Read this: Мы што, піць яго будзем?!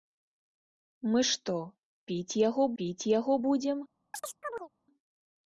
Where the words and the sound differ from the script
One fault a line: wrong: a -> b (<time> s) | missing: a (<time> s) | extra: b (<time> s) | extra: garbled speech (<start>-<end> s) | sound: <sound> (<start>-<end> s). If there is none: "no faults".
extra: піць яго (2.8 s)
sound: chirp (4.1-4.7 s)